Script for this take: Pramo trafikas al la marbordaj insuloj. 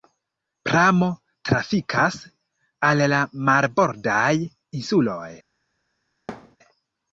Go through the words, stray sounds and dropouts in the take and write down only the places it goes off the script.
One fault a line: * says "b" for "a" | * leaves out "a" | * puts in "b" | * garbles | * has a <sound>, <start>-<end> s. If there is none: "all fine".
* has a thud, 6.3-6.6 s